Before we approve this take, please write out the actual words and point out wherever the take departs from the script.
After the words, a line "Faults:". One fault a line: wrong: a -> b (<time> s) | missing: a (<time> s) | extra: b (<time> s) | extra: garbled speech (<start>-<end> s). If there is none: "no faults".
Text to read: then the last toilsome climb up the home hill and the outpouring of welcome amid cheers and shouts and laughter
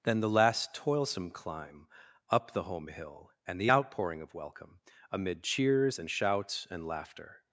then the last toilsome climb up the home hill and the outpouring of welcome amid cheers and shouts and laughter
Faults:
no faults